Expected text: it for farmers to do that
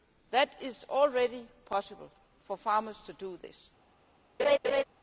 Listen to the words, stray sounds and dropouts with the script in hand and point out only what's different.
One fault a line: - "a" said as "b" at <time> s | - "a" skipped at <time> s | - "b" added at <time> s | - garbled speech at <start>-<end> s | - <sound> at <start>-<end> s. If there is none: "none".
- "is already possible" added at 0.6 s
- "that" said as "this" at 3.4 s
- laugh at 4.4-4.8 s